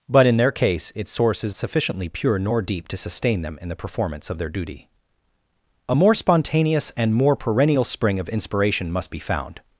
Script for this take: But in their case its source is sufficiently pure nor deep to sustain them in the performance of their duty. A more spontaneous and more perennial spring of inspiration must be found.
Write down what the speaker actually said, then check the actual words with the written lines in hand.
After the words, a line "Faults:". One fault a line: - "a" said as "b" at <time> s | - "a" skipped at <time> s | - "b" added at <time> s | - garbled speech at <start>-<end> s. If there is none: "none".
But in their case its source is sufficiently pure nor deep to sustain them in the performance of their duty. A more spontaneous and more perennial spring of inspiration must be found.
Faults:
none